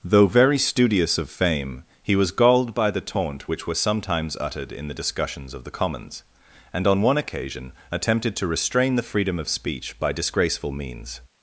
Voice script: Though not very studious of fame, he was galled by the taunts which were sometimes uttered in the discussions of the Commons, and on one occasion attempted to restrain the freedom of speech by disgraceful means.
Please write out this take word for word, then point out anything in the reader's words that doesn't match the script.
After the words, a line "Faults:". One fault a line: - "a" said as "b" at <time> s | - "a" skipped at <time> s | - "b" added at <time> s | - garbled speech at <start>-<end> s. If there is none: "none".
Though very studious of fame, he was galled by the taunt which were sometimes uttered in the discussions of the Commons, and on one occasion attempted to restrain the freedom of speech by disgraceful means.
Faults:
- "not" skipped at 0.3 s
- "taunts" said as "taunt" at 3.0 s